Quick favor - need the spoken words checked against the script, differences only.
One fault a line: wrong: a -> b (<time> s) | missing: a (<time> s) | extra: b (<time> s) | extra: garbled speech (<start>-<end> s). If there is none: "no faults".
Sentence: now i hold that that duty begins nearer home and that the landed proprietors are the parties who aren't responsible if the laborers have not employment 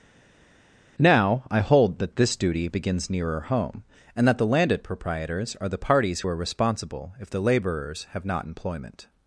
wrong: that -> this (2.2 s)
wrong: aren't -> are (6.3 s)